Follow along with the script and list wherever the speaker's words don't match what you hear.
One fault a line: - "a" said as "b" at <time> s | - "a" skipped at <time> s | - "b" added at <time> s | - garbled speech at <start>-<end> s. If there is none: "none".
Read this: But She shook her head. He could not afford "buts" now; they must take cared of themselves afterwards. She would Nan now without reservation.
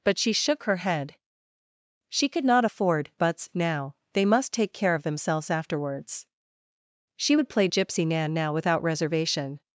- "He" said as "She" at 2.1 s
- "cared" said as "care" at 4.7 s
- "play Gypsy" added at 7.5 s